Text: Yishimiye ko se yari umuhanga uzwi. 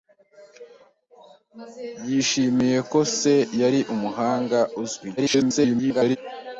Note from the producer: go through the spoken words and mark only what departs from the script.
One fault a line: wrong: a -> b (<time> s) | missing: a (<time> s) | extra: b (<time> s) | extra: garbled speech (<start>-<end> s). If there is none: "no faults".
extra: garbled speech (5.2-6.2 s)